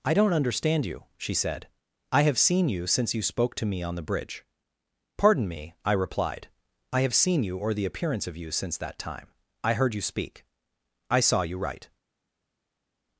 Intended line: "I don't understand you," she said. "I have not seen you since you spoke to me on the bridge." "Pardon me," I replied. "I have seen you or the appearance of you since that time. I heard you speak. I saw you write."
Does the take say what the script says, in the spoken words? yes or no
no